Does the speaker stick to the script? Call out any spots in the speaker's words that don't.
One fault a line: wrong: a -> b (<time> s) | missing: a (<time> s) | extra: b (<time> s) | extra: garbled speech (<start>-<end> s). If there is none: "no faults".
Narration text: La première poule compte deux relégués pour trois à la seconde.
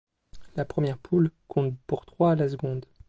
missing: deux relégués (1.8 s)